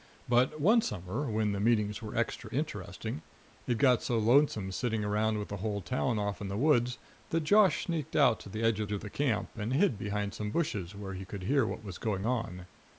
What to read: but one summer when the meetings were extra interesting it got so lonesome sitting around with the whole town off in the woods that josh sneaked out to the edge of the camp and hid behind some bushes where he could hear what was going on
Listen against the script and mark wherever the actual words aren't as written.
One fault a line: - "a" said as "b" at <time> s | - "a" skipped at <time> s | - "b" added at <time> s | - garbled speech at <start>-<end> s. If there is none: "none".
- "of" added at 8.9 s